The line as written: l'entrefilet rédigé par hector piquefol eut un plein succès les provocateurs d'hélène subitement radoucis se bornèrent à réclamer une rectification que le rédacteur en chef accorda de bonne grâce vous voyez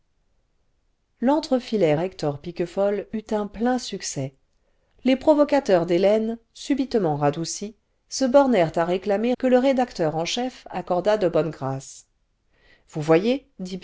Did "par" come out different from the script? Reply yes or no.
yes